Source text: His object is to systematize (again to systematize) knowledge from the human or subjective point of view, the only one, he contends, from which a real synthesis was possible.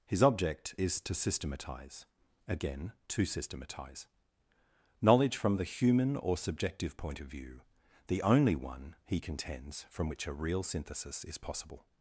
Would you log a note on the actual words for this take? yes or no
yes